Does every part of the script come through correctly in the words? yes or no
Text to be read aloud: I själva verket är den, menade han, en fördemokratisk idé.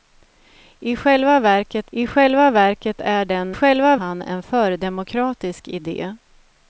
no